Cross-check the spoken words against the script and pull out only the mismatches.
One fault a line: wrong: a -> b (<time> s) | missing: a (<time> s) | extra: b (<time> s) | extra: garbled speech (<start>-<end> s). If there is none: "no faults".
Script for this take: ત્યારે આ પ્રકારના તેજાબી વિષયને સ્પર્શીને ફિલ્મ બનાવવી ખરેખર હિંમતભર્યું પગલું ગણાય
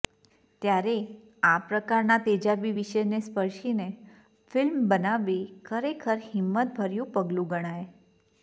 no faults